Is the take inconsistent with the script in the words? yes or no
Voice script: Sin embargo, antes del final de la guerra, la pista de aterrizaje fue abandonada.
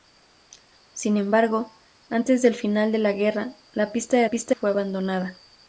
yes